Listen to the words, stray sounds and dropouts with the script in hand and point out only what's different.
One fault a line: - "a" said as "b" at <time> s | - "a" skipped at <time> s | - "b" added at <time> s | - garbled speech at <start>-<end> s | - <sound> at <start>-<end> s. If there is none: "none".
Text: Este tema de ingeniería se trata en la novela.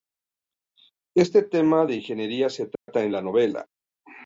- dropout at 2.8-2.9 s